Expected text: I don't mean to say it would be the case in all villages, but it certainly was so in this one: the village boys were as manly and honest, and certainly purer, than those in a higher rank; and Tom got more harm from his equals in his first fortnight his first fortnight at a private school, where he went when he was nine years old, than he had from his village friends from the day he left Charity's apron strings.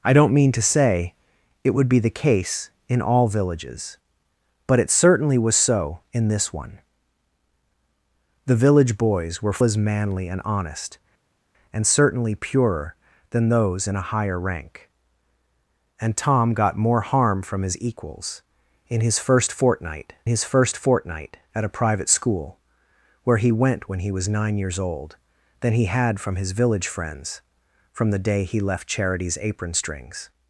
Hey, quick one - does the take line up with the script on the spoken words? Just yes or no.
yes